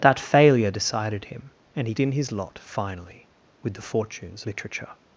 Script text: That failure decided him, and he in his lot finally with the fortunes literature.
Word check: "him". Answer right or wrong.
right